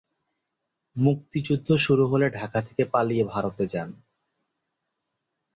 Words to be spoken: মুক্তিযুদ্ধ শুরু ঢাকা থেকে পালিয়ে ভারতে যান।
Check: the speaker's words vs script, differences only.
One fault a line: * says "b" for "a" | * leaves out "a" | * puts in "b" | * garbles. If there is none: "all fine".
* puts in "হলে"